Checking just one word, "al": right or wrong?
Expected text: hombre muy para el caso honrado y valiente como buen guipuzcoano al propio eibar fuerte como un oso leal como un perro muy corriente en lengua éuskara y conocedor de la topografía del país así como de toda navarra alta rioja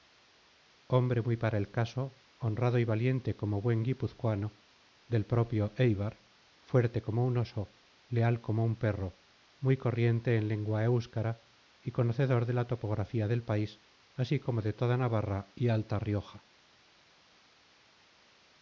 wrong